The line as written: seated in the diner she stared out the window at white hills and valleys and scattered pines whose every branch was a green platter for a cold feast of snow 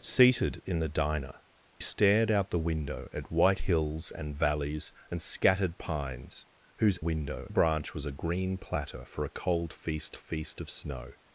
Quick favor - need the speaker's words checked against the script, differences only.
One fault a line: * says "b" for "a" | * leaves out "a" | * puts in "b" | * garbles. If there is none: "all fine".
* leaves out "she"
* says "window" for "every"
* puts in "feast"